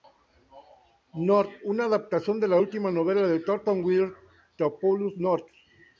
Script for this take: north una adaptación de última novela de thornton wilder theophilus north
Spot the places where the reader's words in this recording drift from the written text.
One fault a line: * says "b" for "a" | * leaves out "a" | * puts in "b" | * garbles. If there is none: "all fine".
* puts in "la"